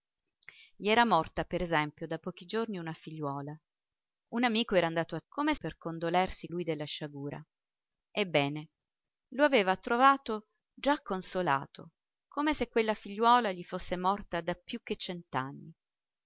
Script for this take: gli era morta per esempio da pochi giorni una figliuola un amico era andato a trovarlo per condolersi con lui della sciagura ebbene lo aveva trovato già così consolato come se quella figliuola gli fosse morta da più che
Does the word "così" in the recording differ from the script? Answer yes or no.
yes